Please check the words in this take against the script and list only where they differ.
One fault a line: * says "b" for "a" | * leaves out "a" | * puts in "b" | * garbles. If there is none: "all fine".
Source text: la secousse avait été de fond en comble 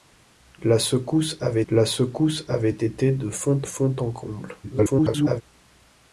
* puts in "la secousse avait"
* puts in "fond"
* garbles